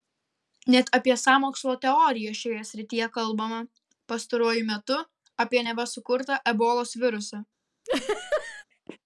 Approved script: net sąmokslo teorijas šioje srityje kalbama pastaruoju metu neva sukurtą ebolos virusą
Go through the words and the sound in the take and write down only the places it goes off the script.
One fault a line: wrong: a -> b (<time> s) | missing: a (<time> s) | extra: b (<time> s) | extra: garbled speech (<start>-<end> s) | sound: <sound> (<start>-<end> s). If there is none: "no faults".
extra: apie (1.0 s)
extra: apie (5.5 s)
sound: laugh (7.8-8.6 s)